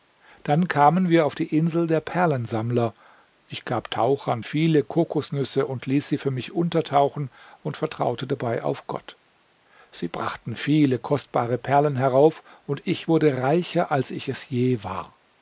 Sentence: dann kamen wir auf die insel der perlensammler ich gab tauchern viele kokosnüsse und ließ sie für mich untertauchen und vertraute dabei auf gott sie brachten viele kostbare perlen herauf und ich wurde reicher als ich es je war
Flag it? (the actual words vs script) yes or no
no